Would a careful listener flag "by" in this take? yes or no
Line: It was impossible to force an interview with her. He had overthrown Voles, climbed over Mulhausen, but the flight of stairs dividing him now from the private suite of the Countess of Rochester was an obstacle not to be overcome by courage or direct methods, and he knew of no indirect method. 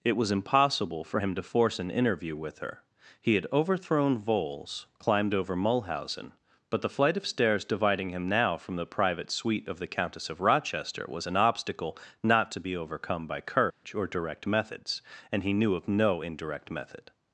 no